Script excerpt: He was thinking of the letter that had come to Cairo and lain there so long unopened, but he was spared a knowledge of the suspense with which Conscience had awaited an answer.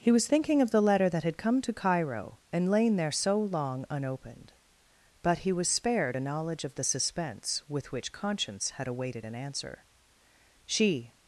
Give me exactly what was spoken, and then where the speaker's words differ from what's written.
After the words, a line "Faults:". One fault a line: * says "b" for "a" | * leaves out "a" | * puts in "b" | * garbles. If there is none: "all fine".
He was thinking of the letter that had come to Cairo and lain there so long unopened, but he was spared a knowledge of the suspense with which Conscience had awaited an answer. She
Faults:
* puts in "She"